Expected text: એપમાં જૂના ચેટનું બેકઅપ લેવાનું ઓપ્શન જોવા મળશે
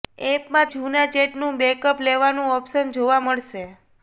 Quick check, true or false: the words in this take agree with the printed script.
true